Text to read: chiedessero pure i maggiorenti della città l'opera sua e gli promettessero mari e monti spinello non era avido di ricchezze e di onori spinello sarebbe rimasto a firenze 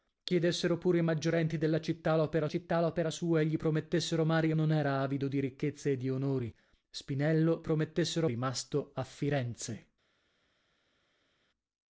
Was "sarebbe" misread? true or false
true